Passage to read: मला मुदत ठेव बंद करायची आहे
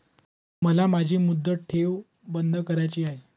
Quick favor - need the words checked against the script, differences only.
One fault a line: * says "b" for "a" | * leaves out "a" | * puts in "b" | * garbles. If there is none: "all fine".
* puts in "माझी"